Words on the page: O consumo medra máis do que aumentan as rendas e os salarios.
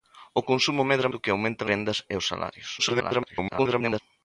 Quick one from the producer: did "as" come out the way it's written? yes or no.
no